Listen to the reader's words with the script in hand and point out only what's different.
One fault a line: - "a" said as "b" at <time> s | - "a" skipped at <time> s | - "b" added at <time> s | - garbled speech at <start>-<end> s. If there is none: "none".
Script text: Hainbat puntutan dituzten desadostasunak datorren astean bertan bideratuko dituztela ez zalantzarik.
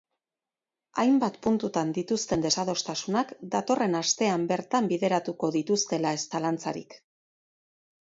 none